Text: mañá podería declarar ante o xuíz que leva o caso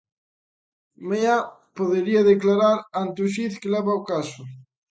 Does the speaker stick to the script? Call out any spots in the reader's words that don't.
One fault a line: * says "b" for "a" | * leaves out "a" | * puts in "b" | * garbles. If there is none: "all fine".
all fine